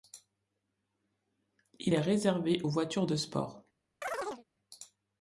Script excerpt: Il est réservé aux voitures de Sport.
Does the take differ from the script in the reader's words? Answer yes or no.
no